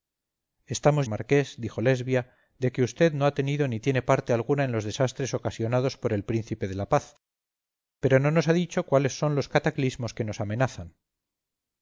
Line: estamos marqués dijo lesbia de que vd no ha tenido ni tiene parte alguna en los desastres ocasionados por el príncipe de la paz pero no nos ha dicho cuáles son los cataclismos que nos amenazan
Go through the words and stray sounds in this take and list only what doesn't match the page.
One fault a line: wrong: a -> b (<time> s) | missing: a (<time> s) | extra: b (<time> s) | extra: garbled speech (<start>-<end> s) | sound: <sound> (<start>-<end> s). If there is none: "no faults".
no faults